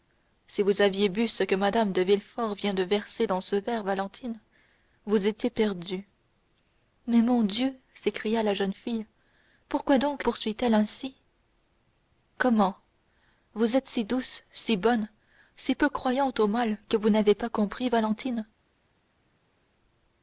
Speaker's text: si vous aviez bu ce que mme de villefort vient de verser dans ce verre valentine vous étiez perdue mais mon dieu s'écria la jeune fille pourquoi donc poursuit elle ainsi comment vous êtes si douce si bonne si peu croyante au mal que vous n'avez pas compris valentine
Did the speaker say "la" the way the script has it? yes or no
yes